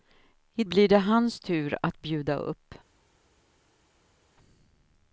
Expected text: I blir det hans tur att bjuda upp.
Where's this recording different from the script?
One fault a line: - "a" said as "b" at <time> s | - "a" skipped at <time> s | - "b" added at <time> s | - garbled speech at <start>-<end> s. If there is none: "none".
none